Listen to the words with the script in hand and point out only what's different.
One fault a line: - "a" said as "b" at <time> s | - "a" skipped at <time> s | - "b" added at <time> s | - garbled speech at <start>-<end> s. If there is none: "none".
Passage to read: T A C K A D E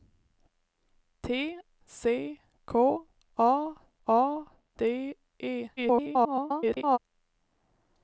- "A" skipped at 1.6 s
- "A" added at 4.1 s
- garbled speech at 5.8-7.0 s